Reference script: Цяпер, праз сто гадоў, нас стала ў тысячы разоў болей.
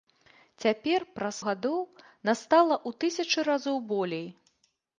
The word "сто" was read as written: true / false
false